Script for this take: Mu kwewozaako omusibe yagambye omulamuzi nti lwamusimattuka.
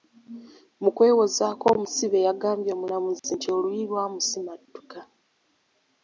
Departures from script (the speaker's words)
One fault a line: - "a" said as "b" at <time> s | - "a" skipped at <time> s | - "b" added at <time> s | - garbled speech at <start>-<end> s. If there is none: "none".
- "oluyi" added at 3.6 s